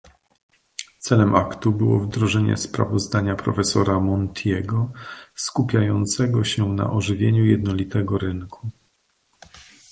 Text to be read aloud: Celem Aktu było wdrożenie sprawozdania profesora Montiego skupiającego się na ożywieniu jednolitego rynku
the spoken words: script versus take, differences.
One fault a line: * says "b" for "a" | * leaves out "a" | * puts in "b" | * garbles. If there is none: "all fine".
all fine